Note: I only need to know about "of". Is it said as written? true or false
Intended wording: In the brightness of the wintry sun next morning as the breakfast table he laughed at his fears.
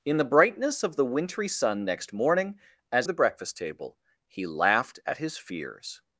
true